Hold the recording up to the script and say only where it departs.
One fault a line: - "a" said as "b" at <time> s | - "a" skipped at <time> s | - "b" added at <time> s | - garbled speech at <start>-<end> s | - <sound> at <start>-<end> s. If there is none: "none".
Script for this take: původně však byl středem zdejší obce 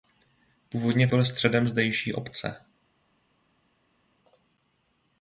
- "však" skipped at 1.1 s